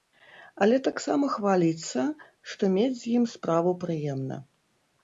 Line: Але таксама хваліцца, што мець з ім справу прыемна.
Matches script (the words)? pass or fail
pass